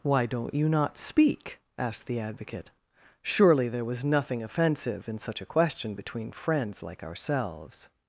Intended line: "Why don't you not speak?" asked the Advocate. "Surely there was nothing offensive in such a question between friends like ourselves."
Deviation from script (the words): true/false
false